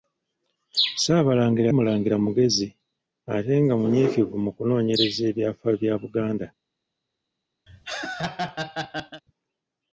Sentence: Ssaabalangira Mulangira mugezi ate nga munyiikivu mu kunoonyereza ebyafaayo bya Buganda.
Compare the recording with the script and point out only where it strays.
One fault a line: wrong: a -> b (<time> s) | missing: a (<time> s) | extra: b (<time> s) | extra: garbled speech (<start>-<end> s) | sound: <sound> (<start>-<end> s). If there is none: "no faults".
sound: laugh (7.7-9.2 s)